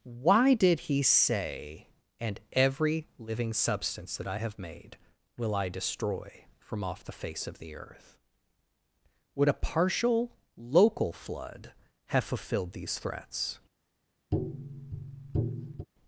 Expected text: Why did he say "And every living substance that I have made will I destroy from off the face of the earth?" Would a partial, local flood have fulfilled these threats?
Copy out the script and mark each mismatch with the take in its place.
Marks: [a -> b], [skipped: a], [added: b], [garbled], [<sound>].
Why did he say "And every living substance that I have made will I destroy from off the face of the earth?" Would a partial, local flood have fulfilled these threats? [tap]